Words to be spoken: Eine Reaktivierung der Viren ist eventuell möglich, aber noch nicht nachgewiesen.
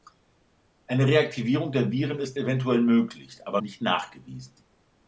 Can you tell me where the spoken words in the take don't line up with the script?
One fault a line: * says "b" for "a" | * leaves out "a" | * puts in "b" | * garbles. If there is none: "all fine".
* leaves out "noch"